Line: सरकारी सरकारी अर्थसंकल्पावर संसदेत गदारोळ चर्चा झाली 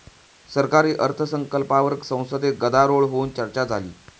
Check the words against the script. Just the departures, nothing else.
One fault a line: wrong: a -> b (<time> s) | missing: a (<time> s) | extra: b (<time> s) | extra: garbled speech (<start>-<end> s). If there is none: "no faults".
missing: सरकारी (0.9 s)
extra: होऊन (3.0 s)